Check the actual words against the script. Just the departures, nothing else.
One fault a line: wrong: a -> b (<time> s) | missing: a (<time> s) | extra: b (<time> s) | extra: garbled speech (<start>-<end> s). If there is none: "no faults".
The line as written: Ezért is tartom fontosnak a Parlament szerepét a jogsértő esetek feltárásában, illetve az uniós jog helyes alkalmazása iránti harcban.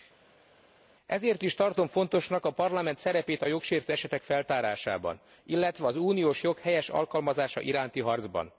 no faults